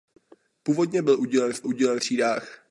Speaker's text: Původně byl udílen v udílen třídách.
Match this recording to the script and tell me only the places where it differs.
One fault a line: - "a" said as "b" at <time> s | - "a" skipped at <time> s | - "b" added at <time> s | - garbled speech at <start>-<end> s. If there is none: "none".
none